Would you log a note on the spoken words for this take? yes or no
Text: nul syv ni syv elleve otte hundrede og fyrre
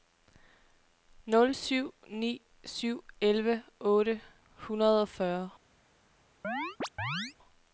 no